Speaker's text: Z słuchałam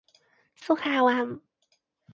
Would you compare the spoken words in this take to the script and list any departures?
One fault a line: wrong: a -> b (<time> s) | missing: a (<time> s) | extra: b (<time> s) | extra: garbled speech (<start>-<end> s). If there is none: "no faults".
no faults